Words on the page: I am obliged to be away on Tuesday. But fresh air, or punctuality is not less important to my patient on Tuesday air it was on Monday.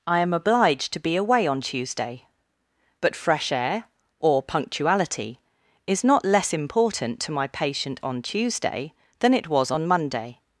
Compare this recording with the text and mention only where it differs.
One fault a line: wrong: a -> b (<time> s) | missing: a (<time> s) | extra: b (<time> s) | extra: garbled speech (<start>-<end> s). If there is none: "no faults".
wrong: air -> than (9.2 s)